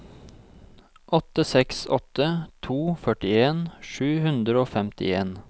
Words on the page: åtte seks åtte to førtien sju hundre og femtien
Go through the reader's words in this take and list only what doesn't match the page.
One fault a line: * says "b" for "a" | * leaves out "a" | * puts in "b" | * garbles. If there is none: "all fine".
all fine